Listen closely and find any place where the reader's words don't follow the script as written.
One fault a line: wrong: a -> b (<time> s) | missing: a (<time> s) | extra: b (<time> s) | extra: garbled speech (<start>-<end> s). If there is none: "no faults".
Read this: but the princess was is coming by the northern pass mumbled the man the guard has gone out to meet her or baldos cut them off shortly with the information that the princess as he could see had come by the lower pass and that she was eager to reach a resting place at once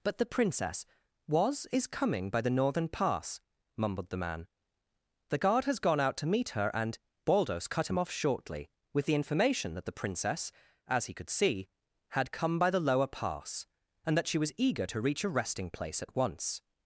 wrong: or -> and (6.7 s)
wrong: them -> him (7.9 s)